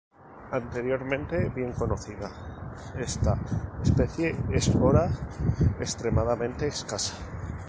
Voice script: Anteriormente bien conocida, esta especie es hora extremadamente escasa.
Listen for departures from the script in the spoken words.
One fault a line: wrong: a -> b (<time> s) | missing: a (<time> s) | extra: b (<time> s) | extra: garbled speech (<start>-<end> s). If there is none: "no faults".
no faults